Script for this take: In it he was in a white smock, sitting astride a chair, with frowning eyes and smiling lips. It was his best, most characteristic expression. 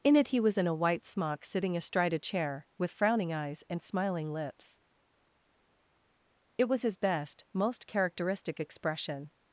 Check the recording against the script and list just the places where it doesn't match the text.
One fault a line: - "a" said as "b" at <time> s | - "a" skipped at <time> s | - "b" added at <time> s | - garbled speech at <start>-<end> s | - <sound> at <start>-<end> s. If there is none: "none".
none